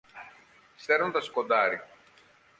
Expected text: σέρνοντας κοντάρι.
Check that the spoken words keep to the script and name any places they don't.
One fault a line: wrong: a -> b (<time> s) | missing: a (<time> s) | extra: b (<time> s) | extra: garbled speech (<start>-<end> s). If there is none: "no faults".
no faults